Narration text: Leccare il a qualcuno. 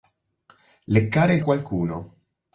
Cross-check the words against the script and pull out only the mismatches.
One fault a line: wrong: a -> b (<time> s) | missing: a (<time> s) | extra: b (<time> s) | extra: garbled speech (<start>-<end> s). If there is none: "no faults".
no faults